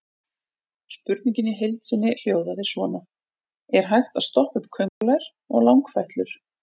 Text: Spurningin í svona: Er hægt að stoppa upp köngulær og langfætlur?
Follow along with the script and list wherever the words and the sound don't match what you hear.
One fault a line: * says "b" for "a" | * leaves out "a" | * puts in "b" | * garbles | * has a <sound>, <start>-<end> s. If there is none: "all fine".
* puts in "heild sinni hljóðaði"
* has a dropout, 4.9-5.0 s